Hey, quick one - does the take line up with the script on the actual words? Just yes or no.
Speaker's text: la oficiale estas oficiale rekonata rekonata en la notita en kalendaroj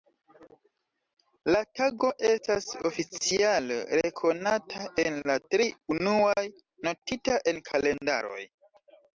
no